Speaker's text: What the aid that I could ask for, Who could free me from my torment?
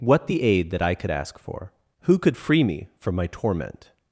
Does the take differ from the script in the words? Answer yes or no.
no